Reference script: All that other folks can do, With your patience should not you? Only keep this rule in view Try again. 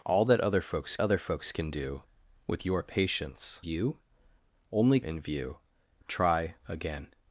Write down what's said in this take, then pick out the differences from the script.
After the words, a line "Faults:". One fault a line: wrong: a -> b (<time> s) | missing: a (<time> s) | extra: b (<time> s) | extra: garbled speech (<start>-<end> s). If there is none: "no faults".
All that other folks other folks can do, With your patience you? Only in view Try again.
Faults:
extra: other folks (1.0 s)
missing: should not (3.6 s)
missing: keep this rule (5.0 s)